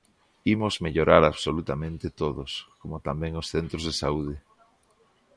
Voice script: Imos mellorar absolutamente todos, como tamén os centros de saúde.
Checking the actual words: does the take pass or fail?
pass